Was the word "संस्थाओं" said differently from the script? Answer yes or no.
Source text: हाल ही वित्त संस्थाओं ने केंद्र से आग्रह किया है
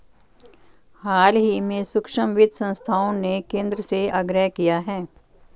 no